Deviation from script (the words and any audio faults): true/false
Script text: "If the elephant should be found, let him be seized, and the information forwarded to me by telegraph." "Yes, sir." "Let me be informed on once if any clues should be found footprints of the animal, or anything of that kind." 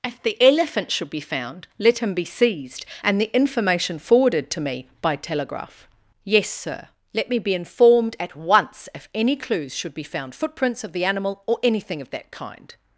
true